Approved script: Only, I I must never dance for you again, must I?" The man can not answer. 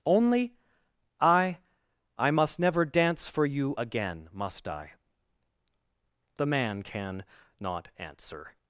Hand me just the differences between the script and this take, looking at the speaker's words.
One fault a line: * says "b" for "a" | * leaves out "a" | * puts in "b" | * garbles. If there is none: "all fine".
all fine